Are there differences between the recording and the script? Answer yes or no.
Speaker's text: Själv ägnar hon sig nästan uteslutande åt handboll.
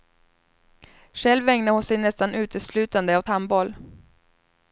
no